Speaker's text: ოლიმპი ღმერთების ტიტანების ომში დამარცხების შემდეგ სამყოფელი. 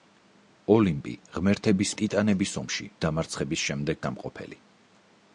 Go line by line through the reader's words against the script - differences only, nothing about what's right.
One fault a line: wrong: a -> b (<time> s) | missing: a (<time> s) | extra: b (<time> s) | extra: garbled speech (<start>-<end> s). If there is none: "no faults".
no faults